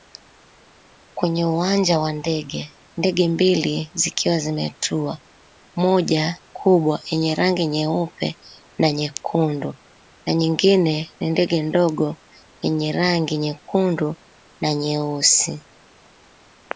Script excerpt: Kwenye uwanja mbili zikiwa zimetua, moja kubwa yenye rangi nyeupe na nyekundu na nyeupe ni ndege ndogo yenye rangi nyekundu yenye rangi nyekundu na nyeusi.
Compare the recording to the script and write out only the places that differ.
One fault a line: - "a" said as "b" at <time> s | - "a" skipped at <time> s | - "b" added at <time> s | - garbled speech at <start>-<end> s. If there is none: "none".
- "wa ndege ndege" added at 2.0 s
- "nyeupe" said as "nyingine" at 10.3 s
- "yenye rangi nyekundu" skipped at 14.1 s